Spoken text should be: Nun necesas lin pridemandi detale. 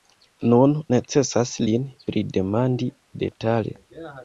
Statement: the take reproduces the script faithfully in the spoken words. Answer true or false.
true